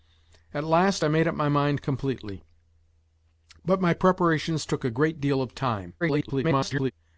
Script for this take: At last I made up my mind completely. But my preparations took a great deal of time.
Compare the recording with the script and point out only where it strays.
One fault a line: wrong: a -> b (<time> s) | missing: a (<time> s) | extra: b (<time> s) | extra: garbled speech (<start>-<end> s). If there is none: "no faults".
extra: garbled speech (6.0-6.9 s)